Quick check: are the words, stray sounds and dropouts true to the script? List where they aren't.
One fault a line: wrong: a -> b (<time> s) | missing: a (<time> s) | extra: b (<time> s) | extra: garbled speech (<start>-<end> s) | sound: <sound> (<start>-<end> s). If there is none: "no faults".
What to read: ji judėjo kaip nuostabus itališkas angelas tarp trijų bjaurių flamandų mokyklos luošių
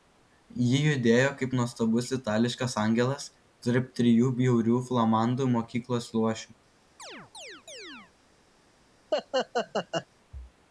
sound: chirp (7.0-8.1 s)
sound: laugh (9.1-10.1 s)